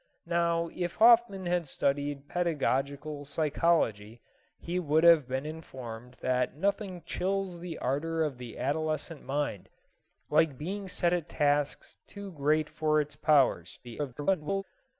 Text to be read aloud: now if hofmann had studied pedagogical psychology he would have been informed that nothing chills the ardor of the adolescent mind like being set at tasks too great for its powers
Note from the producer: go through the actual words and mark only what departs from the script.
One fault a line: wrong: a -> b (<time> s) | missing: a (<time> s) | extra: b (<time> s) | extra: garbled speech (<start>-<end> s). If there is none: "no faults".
extra: garbled speech (13.8-14.6 s)